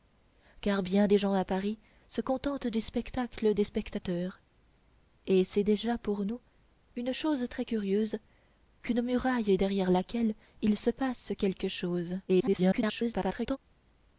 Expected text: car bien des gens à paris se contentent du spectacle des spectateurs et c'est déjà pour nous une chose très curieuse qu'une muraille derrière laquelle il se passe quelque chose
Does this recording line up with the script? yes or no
no